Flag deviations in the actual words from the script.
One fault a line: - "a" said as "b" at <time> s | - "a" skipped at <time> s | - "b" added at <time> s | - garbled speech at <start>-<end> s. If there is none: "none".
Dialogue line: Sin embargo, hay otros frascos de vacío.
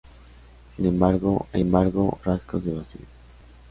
- "otros" said as "embargo" at 1.6 s